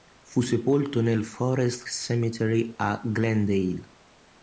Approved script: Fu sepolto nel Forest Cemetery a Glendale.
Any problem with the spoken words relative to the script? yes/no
no